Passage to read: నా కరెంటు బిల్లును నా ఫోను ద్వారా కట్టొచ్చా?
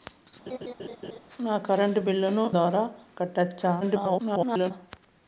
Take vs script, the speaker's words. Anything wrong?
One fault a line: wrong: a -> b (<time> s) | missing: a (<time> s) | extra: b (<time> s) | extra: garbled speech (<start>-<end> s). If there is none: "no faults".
missing: నా ఫోను (2.4 s)
extra: garbled speech (3.8-4.7 s)